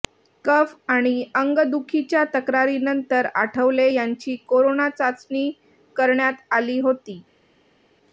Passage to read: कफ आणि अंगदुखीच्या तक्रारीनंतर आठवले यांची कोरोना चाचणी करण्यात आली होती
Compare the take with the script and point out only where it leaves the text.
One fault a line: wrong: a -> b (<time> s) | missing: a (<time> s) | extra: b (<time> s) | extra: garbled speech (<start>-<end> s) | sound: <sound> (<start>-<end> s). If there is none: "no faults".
no faults